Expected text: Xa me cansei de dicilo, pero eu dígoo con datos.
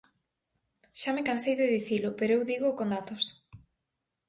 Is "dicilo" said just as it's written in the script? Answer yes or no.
yes